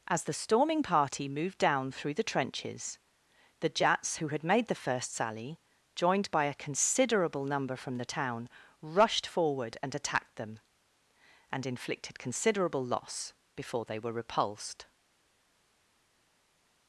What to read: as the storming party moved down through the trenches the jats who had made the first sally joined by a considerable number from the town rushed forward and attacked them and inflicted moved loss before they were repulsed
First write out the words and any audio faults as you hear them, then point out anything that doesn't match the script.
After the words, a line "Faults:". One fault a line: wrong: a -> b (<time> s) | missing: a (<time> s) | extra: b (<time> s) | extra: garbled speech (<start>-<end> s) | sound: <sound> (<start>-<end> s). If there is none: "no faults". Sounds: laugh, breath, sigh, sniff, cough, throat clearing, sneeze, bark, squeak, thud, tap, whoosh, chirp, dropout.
as the storming party moved down through the trenches the jats who had made the first sally joined by a considerable number from the town rushed forward and attacked them and inflicted considerable loss before they were repulsed
Faults:
wrong: moved -> considerable (12.2 s)